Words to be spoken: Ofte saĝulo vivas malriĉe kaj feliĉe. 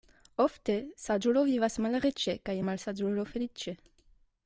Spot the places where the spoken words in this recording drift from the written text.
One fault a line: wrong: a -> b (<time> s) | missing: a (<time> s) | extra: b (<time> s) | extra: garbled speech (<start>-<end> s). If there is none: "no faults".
extra: malsaĝulo (2.7 s)